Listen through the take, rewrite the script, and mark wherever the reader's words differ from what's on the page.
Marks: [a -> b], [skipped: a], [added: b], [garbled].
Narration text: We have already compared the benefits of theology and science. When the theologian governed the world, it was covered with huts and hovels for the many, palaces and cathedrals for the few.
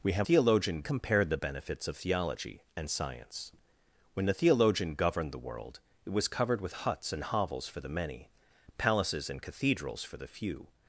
We have [already -> theologian] compared the benefits of theology and science. When the theologian governed the world, it was covered with huts and hovels for the many, palaces and cathedrals for the few.